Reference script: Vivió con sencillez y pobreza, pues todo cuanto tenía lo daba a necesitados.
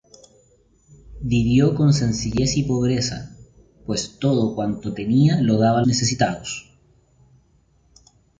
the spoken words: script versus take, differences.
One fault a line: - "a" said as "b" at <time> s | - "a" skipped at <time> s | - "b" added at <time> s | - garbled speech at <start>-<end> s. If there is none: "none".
none